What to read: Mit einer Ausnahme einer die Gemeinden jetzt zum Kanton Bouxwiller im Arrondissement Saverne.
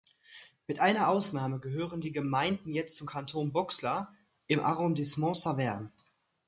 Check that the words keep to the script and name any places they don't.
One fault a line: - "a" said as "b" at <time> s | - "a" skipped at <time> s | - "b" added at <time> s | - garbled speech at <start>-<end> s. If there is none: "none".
- "einer" said as "gehören" at 1.6 s